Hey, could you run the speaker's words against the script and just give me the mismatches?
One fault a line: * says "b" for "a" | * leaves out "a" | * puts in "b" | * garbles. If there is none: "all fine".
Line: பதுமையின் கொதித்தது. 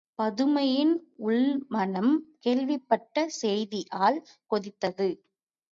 * puts in "உள்மனம் கேள்விப்பட்ட செய்தியால்"